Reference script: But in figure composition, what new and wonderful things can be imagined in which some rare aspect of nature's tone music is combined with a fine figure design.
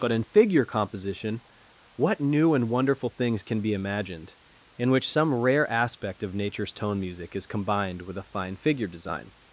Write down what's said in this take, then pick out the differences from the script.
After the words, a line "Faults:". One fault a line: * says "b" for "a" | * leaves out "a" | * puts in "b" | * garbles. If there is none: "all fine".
But in figure composition, what new and wonderful things can be imagined in which some rare aspect of nature's tone music is combined with a fine figure design.
Faults:
all fine